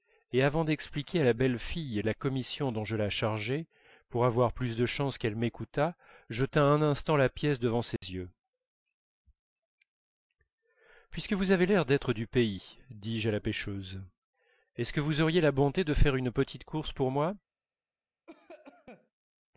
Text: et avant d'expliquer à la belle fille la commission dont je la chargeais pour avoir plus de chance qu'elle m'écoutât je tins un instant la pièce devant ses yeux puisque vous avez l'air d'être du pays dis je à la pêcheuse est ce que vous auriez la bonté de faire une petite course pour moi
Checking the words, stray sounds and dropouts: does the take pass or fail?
fail